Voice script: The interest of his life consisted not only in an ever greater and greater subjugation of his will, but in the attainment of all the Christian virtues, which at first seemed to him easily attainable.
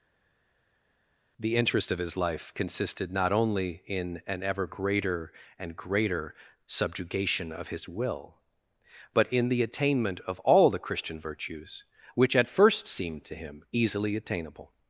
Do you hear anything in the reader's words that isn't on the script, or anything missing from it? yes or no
no